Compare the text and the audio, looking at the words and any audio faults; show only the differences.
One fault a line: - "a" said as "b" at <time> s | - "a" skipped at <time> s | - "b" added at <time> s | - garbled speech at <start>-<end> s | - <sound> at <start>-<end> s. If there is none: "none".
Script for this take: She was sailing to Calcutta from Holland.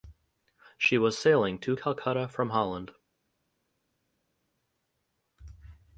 none